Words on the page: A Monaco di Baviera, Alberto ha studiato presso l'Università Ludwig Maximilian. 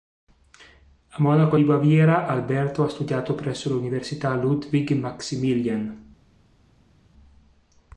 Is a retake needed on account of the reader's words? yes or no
no